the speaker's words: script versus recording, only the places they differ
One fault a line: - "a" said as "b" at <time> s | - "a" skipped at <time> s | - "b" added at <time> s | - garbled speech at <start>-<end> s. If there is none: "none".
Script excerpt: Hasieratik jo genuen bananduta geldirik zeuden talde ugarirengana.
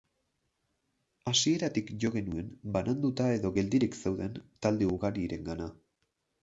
- "edo" added at 3.4 s